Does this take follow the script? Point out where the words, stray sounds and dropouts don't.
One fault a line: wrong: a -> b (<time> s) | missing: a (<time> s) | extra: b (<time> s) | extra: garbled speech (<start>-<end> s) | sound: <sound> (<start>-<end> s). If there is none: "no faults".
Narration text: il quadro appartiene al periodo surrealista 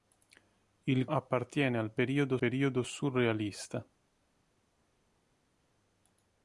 missing: quadro (1.1 s)
extra: periodo (2.4 s)